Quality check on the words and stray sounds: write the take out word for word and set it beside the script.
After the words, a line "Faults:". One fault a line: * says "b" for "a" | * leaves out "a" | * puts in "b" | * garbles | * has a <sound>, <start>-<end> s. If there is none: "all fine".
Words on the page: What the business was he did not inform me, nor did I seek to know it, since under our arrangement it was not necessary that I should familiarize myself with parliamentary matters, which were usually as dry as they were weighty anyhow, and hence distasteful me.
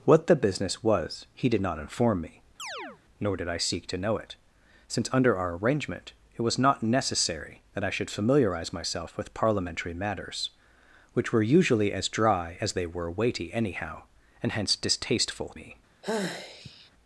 What the business was he did not inform me, nor did I seek to know it, since under our arrangement it was not necessary that I should familiarize myself with parliamentary matters, which were usually as dry as they were weighty anyhow, and hence distasteful me.
Faults:
* has a chirp, 2.6-3.0 s
* has a sigh, 16.0-16.9 s